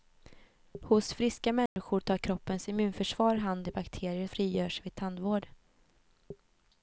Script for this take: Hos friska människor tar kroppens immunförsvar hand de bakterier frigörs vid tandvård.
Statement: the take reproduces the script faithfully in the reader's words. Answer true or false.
true